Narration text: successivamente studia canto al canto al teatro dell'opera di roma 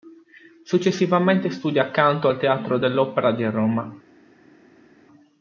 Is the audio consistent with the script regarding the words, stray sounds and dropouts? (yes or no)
no